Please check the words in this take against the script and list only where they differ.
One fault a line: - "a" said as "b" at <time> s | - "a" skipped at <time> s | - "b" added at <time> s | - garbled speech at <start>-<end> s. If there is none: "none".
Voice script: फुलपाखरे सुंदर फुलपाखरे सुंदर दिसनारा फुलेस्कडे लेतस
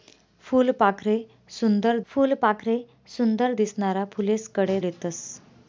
none